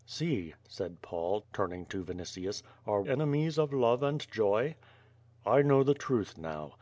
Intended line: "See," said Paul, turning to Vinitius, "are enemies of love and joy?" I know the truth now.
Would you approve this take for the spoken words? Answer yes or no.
yes